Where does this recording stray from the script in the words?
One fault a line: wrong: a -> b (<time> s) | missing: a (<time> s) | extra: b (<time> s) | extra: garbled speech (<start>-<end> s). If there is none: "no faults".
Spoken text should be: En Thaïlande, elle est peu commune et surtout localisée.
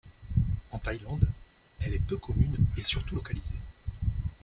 no faults